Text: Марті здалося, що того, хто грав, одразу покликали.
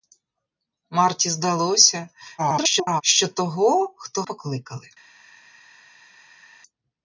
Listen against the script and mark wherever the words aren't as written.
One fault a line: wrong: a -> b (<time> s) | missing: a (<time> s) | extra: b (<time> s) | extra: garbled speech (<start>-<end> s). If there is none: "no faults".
extra: garbled speech (2.4-3.0 s)
missing: грав одразу (4.2 s)